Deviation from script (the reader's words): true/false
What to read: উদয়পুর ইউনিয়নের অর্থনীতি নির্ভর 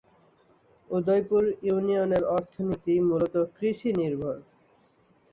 true